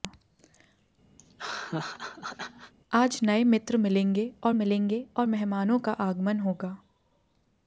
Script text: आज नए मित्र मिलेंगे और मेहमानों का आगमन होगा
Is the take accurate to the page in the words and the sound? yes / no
no